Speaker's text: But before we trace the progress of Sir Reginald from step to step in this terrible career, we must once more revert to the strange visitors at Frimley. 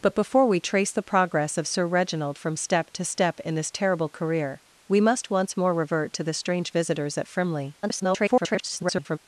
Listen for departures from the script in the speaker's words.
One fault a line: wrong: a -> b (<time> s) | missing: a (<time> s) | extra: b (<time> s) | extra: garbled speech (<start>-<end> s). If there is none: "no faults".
extra: garbled speech (7.8-9.2 s)